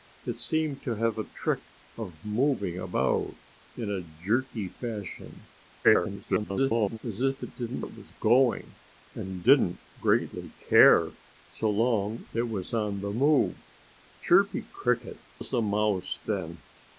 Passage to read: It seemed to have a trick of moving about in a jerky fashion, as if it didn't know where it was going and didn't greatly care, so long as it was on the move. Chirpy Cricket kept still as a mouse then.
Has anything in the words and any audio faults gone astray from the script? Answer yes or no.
yes